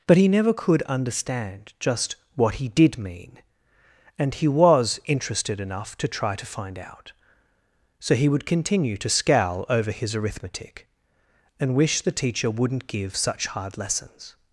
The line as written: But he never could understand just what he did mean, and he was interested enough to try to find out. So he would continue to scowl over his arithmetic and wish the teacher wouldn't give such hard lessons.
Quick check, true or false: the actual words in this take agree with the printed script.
true